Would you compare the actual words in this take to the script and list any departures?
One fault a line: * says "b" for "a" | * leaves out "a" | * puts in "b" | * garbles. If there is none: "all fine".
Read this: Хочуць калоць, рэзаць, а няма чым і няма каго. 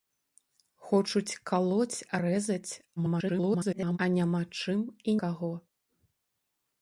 * garbles
* leaves out "няма"